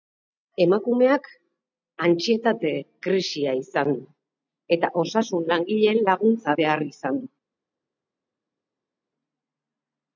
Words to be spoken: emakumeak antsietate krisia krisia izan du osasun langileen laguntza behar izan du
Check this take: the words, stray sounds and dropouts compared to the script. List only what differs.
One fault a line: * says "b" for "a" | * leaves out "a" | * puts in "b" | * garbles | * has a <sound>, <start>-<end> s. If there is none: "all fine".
* leaves out "krisia"
* puts in "eta"